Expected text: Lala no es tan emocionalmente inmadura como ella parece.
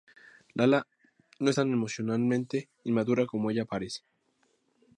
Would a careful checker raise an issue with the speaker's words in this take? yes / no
no